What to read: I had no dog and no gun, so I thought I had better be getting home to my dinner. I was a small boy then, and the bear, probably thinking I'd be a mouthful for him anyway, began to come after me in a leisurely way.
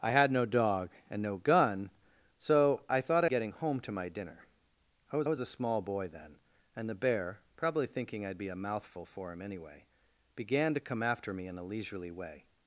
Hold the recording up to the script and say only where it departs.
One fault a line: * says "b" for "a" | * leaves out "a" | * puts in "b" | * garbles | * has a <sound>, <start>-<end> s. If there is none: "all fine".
* leaves out "had better be"
* puts in "was"